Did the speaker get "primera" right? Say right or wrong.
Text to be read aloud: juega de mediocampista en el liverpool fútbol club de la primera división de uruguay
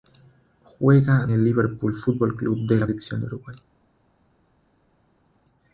wrong